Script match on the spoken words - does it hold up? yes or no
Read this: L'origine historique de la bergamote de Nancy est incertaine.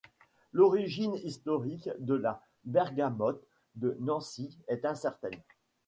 yes